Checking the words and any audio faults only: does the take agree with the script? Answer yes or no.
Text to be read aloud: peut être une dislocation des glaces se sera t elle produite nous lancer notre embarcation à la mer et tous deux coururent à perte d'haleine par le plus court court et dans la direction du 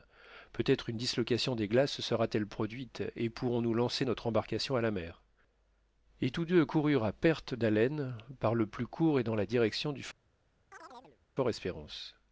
no